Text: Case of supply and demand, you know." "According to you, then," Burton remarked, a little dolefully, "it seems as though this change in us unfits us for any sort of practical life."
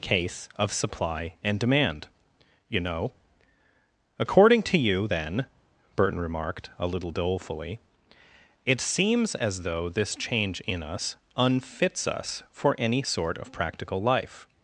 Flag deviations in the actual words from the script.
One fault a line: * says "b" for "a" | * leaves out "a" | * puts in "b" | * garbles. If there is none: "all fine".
all fine